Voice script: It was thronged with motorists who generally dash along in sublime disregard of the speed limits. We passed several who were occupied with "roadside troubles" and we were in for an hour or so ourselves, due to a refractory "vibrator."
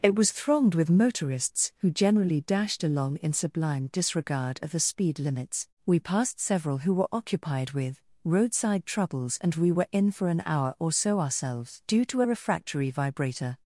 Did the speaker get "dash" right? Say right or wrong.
wrong